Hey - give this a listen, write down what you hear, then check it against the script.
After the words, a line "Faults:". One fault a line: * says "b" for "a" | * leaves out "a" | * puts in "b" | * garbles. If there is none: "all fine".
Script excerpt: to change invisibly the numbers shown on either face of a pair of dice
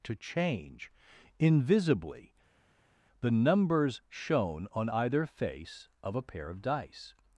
to change invisibly the numbers shown on either face of a pair of dice
Faults:
all fine